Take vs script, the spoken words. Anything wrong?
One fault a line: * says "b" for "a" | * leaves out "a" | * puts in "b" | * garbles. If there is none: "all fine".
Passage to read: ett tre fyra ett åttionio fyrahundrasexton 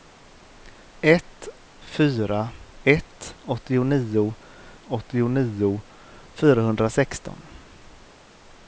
* leaves out "tre"
* puts in "åttionio"